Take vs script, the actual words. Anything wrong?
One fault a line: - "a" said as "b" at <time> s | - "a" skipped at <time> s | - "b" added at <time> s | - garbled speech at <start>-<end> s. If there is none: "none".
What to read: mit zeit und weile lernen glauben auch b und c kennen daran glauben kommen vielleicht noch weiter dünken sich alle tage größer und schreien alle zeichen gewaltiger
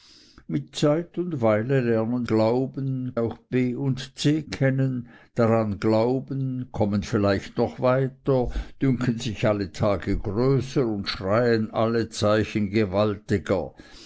none